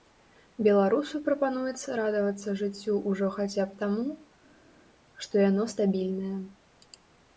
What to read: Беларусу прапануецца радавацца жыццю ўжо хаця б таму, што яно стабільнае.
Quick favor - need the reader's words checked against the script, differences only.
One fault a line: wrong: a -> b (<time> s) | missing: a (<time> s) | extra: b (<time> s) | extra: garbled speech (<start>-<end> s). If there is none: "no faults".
no faults